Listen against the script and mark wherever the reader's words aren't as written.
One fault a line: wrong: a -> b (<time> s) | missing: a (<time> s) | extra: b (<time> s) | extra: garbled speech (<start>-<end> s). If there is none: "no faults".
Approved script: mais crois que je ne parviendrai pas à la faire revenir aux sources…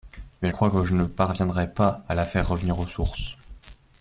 no faults